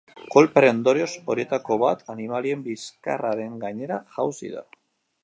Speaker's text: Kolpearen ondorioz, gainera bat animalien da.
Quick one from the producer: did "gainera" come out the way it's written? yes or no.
no